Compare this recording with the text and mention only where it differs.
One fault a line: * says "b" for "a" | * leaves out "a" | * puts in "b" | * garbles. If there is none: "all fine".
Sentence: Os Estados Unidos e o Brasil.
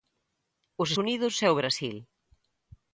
* leaves out "Estados"